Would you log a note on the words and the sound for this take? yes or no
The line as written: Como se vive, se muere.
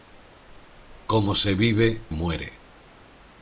yes